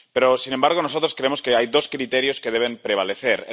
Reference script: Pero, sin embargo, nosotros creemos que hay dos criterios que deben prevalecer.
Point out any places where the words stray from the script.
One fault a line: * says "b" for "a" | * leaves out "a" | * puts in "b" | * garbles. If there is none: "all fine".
all fine